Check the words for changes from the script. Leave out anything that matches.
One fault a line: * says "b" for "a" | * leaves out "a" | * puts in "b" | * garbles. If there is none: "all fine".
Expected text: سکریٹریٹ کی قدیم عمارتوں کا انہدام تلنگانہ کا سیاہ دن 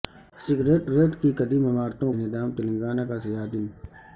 * leaves out "کا"